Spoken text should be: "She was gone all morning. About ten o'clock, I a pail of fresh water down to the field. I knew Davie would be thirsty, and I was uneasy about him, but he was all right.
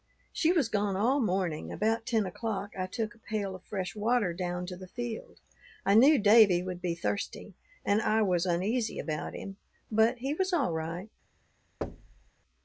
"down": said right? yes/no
yes